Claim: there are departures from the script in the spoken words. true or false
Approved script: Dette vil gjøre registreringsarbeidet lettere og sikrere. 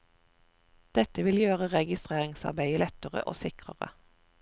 false